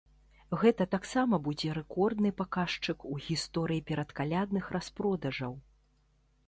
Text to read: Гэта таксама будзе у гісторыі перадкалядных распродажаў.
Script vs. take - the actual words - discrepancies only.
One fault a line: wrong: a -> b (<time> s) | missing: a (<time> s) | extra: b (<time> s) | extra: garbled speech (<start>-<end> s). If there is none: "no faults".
extra: рэкордны паказчык (1.8 s)